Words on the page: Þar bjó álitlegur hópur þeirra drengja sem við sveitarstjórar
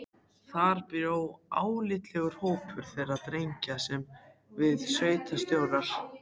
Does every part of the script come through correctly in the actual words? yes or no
yes